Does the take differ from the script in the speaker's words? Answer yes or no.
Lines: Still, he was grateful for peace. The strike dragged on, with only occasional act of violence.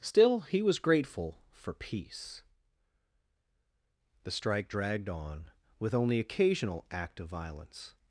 no